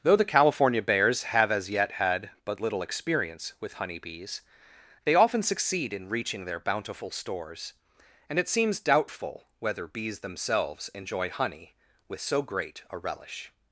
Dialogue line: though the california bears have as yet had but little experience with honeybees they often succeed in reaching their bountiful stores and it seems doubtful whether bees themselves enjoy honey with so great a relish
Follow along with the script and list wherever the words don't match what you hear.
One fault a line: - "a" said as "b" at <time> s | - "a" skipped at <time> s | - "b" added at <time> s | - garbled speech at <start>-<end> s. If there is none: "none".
none